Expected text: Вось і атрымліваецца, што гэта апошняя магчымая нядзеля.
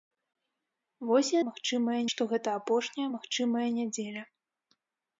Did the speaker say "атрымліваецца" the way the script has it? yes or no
no